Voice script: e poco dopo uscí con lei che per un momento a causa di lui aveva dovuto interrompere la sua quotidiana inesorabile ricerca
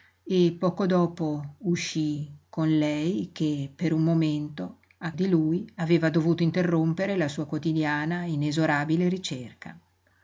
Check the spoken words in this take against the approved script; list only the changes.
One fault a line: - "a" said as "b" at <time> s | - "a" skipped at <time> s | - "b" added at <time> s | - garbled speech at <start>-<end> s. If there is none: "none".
- "causa" skipped at 5.1 s